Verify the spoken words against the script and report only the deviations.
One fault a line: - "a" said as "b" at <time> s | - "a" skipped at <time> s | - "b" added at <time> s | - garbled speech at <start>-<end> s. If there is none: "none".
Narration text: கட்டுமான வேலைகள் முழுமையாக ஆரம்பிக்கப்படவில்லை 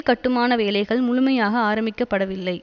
none